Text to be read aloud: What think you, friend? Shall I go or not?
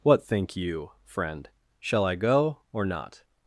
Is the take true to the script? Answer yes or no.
yes